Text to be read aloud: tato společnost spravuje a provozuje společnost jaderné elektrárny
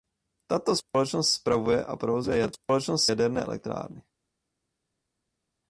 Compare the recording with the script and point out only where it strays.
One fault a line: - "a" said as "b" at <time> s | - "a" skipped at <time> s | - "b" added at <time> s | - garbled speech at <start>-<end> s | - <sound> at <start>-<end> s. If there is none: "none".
none